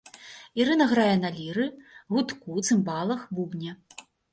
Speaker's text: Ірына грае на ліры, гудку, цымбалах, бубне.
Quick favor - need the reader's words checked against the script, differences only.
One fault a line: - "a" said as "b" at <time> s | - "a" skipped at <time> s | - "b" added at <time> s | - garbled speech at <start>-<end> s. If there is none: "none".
none